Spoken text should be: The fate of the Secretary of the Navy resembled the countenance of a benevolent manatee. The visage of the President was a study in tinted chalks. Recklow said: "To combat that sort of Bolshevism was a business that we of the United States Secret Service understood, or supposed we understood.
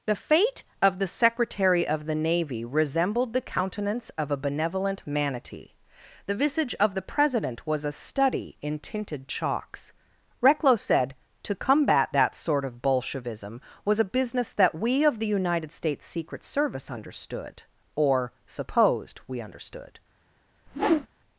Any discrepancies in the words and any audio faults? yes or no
yes